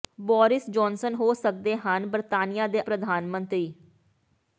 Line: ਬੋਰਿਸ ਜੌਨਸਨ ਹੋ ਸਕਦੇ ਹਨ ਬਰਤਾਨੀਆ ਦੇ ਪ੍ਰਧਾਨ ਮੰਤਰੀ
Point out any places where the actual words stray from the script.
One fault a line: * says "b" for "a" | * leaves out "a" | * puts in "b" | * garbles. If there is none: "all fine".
all fine